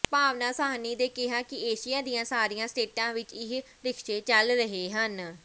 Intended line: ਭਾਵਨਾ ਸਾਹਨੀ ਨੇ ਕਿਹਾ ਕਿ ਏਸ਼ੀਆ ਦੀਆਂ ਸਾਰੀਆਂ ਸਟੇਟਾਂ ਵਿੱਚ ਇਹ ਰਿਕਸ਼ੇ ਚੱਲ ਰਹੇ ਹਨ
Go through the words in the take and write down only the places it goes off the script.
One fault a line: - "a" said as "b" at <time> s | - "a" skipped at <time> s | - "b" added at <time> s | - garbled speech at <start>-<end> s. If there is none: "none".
none